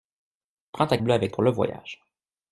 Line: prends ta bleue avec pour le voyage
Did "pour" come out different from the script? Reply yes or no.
no